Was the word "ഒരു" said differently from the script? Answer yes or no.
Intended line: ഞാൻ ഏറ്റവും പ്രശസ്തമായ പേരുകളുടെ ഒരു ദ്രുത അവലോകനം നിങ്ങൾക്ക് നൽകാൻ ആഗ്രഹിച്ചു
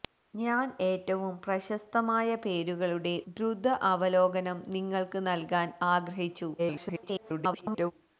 yes